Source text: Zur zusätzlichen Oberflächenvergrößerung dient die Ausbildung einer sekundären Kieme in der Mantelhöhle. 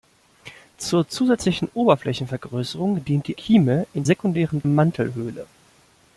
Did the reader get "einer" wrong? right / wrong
wrong